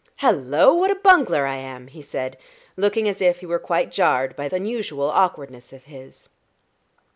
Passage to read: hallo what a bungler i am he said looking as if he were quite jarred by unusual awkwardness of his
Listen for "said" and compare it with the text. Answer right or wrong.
right